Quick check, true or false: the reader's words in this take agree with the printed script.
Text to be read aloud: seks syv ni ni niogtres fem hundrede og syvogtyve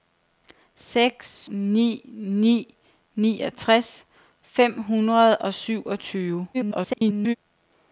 false